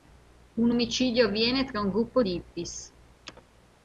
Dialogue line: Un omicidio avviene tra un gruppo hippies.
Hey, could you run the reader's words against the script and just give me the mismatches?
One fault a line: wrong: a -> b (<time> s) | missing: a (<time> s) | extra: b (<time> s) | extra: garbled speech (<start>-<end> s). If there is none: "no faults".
extra: di (2.2 s)